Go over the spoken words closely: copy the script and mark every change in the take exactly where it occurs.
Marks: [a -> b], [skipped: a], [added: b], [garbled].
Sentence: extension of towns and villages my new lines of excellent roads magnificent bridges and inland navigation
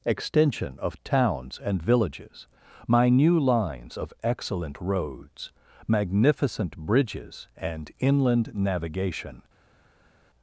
extension of towns and villages my new lines of excellent roads magnificent bridges and inland navigation